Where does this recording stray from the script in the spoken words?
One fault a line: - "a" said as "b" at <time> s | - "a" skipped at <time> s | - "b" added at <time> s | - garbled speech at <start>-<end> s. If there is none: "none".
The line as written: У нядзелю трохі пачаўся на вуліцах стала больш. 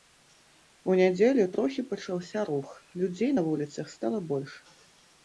- "рух людзей" added at 2.5 s